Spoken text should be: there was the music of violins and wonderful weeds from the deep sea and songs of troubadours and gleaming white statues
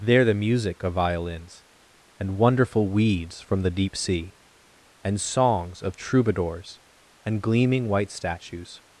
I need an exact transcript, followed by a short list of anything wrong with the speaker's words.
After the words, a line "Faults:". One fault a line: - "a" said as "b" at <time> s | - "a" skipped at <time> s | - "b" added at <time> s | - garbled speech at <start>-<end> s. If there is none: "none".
there the music of violins and wonderful weeds from the deep sea and songs of troubadours and gleaming white statues
Faults:
- "was" skipped at 0.2 s